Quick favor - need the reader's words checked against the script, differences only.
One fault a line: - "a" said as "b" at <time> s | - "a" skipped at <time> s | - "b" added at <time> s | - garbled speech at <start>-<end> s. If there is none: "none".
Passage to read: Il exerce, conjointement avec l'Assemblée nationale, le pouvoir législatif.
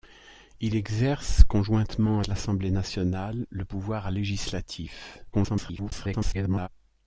- "avec" skipped at 2.2 s
- garbled speech at 5.3-6.7 s